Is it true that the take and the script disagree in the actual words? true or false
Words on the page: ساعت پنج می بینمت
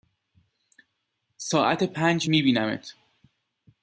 false